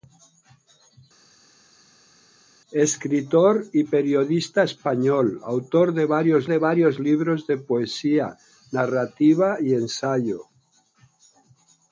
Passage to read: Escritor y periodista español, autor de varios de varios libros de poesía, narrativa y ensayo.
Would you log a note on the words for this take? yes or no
no